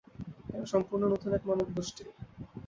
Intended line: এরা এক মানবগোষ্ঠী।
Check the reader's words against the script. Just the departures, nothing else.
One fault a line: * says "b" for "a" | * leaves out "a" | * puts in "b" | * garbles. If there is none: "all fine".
* puts in "সম্পূর্ণ নতুন"